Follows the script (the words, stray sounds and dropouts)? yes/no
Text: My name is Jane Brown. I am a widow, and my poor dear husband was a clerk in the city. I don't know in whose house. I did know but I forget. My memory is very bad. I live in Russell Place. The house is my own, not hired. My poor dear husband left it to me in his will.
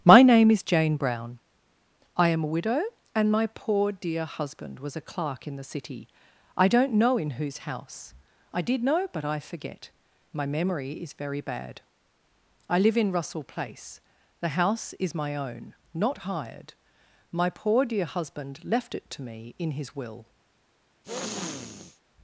no